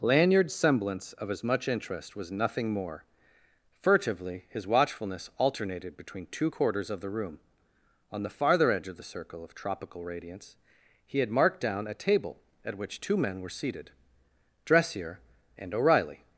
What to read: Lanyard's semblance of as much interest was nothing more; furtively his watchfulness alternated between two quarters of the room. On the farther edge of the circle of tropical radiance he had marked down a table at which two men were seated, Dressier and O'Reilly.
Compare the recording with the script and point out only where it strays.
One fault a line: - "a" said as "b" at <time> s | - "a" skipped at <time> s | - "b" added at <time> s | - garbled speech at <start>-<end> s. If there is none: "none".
none